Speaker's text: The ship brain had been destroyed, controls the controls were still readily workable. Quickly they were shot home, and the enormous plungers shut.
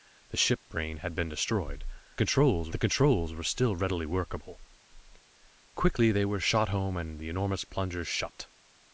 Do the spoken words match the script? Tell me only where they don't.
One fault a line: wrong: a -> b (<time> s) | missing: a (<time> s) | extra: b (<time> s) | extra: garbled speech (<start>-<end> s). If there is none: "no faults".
no faults